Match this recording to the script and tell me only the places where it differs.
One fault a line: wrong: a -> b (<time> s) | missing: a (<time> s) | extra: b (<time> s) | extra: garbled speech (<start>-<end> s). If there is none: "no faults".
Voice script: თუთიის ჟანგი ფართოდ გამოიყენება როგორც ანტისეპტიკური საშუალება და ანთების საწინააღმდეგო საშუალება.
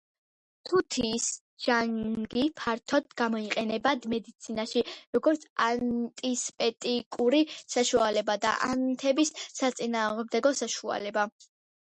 extra: მედიცინაში (4.2 s)